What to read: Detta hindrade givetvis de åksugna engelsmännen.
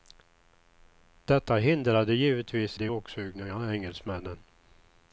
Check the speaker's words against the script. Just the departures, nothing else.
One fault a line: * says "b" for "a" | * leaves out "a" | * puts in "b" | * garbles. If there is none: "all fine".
all fine